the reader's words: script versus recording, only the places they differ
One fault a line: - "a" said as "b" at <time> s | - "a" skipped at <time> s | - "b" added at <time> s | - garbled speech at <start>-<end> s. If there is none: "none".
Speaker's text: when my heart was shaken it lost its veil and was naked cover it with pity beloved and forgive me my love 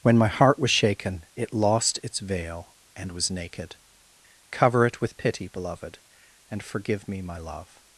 none